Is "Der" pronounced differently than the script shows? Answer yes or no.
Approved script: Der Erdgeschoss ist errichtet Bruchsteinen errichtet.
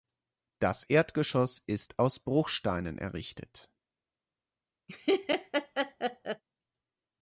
yes